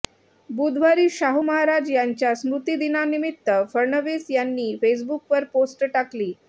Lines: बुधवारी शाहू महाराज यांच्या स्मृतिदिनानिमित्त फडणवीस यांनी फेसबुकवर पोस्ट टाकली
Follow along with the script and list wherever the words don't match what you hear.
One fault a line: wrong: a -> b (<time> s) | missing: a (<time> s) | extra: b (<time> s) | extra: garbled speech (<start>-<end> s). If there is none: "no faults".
no faults